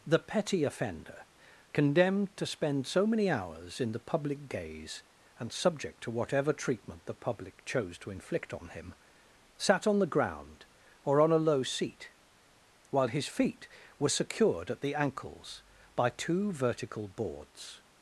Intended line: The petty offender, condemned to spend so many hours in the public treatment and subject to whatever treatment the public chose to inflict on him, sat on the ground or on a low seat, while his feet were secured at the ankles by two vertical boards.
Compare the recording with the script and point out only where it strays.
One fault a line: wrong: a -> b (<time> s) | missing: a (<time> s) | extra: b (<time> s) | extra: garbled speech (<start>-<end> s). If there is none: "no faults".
wrong: treatment -> gaze (4.5 s)